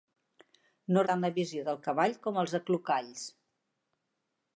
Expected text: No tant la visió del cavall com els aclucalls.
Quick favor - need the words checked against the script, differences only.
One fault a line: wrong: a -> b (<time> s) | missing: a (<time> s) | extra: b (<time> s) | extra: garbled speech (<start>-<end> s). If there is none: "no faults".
no faults